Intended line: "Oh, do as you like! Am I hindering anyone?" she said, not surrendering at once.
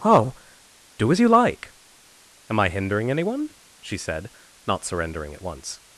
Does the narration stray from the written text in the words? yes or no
no